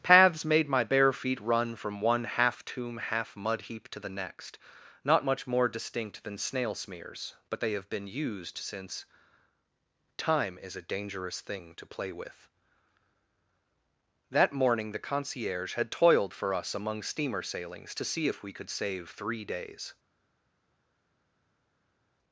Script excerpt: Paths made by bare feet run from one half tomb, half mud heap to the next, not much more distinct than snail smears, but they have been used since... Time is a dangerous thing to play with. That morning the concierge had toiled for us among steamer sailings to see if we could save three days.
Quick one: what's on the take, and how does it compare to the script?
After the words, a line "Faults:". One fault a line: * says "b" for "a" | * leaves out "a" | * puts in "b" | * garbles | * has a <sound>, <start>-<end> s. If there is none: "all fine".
Paths made my bare feet run from one half tomb, half mud heap to the next, not much more distinct than snail smears, but they have been used since... Time is a dangerous thing to play with. That morning the concierge had toiled for us among steamer sailings to see if we could save three days.
Faults:
* says "my" for "by"